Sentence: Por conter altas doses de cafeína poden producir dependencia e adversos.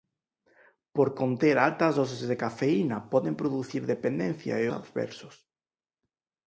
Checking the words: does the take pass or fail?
pass